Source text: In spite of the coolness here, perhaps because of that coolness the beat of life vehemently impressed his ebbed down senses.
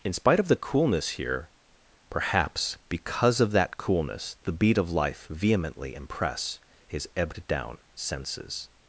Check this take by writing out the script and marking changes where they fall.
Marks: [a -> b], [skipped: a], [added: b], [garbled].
In spite of the coolness here, perhaps because of that coolness the beat of life vehemently [impressed -> impress] his ebbed down senses.